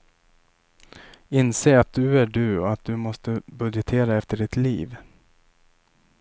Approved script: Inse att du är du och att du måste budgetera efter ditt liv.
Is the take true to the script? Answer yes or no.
yes